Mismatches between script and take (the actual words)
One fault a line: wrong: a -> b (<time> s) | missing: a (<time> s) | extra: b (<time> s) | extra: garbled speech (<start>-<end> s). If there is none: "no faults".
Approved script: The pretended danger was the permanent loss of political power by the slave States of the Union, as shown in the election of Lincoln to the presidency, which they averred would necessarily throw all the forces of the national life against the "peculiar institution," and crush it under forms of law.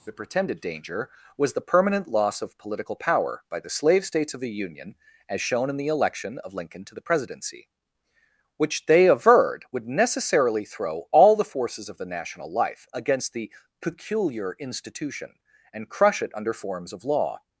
no faults